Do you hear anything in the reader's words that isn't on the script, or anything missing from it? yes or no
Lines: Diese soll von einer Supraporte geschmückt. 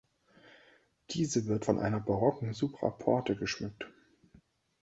yes